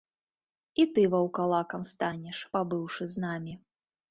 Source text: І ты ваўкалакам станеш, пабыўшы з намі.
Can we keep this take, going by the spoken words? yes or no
yes